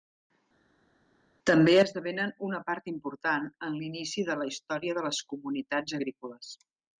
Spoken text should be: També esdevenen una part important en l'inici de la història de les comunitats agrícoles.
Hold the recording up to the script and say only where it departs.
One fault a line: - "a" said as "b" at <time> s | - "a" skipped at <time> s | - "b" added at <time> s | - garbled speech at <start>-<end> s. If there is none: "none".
none